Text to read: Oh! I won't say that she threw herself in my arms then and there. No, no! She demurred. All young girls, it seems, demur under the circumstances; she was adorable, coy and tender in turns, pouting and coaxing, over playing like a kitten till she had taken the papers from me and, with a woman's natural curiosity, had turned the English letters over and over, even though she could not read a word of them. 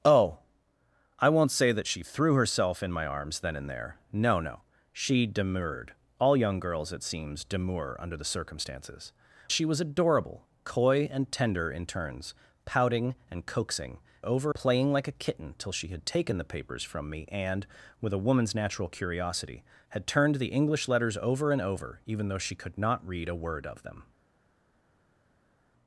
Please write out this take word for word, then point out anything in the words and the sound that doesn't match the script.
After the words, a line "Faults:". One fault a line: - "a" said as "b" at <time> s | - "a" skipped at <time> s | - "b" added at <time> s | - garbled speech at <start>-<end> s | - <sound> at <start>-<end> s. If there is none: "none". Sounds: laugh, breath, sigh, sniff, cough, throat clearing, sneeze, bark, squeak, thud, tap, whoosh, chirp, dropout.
Oh! I won't say that she threw herself in my arms then and there. No, no! She demurred. All young girls, it seems, demur under the circumstances; she was adorable, coy and tender in turns, pouting and coaxing, over playing like a kitten till she had taken the papers from me and, with a woman's natural curiosity, had turned the English letters over and over, even though she could not read a word of them.
Faults:
none